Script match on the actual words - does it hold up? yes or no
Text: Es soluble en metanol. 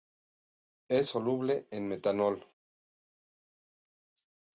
yes